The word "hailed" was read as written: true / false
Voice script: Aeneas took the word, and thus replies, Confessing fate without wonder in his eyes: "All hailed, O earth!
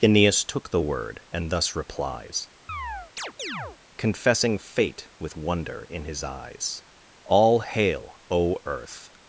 false